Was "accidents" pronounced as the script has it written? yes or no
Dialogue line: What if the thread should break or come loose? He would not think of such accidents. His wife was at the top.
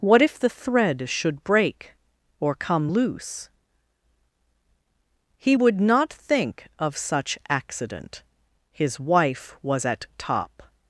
no